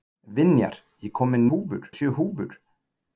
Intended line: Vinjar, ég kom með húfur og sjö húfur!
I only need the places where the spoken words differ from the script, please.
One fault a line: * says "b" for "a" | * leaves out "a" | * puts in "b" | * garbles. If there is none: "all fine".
all fine